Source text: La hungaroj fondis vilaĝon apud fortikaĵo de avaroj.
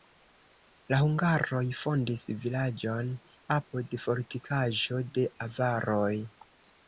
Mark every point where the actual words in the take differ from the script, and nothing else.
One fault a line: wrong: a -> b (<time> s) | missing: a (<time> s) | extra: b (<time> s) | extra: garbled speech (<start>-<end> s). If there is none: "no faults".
no faults